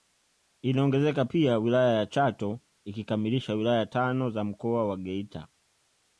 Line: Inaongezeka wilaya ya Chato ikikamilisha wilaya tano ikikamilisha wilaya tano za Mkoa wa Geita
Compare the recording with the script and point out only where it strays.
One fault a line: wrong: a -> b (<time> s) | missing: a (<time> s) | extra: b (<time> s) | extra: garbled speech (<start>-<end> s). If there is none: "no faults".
extra: pia (1.2 s)
missing: ikikamilisha wilaya tano (4.3 s)